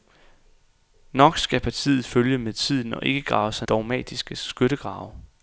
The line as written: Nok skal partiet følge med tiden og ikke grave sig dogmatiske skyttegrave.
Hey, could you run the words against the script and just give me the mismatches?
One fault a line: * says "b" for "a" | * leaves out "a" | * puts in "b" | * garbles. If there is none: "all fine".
all fine